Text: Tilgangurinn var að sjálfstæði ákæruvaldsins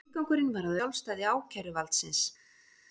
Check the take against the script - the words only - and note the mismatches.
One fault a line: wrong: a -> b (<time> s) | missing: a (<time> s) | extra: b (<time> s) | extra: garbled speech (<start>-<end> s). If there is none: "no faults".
no faults